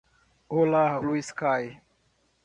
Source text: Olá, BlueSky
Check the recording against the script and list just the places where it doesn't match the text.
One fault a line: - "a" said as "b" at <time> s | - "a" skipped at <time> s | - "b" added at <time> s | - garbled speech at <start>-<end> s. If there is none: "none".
none